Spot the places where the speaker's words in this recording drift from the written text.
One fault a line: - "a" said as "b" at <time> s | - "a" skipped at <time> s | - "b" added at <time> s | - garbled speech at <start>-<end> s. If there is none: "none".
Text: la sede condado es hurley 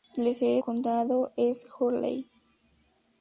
none